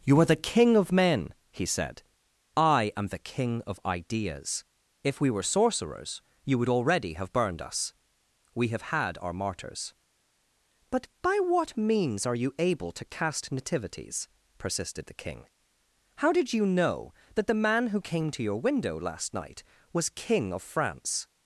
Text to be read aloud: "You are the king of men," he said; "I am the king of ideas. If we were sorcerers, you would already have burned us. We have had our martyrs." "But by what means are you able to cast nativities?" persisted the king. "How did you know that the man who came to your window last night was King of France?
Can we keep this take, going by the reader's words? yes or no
yes